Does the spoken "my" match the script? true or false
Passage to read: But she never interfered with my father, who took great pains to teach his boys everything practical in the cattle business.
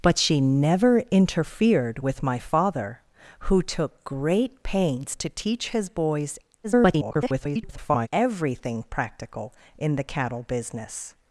true